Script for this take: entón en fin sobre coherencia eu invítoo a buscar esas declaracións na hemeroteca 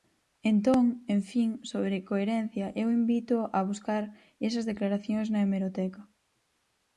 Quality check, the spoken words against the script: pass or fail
pass